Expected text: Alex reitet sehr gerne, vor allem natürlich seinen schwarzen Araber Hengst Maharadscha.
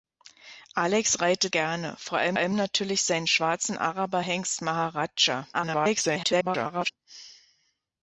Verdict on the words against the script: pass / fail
fail